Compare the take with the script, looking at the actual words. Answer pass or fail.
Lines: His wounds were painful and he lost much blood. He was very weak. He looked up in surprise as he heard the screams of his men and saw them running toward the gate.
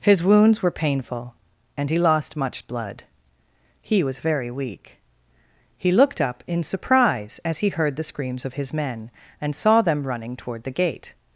pass